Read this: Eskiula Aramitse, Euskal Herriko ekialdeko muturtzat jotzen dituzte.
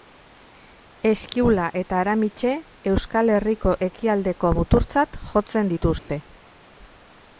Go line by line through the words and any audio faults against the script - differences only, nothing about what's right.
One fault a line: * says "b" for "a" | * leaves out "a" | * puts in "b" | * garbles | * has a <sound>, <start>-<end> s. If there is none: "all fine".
* puts in "eta"
* has a dropout, 6.0-6.1 s